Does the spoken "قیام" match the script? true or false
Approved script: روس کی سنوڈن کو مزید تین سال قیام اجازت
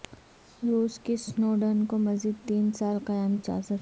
true